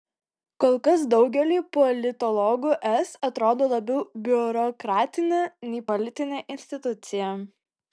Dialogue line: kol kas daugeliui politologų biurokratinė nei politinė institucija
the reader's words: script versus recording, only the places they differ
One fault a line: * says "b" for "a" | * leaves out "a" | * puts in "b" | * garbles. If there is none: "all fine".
* puts in "es atrodo labiau"